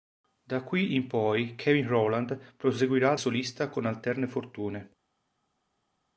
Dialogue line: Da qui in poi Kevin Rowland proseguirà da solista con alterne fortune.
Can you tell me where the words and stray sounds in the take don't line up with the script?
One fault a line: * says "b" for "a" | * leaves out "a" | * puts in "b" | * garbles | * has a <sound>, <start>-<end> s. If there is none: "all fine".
* leaves out "da"